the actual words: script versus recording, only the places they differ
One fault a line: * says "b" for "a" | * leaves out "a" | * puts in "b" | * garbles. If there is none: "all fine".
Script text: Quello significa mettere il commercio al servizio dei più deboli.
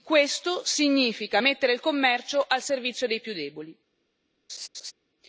* says "Questo" for "Quello"